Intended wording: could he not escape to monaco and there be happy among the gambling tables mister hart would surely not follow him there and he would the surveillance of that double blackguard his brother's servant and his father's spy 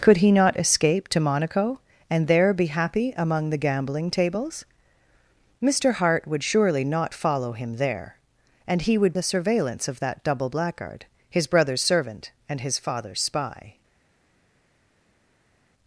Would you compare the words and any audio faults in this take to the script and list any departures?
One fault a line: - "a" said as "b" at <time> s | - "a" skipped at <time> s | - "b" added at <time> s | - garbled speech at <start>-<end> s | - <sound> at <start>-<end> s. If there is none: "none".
none